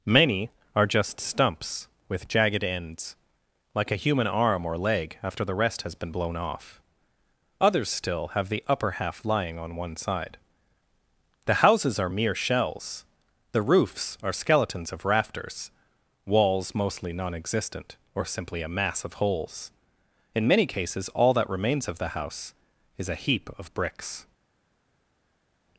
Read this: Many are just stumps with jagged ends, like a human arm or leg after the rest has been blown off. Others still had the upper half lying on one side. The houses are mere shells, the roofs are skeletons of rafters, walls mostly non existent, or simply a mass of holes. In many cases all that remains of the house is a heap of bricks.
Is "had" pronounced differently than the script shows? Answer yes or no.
yes